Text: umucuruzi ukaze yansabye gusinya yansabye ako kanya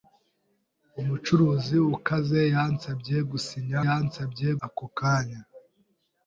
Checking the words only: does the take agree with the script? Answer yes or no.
yes